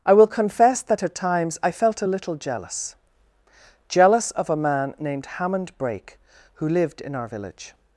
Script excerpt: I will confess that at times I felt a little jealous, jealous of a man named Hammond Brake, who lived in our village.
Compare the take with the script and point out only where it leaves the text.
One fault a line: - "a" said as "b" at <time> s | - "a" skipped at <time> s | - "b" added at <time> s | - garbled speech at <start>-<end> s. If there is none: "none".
none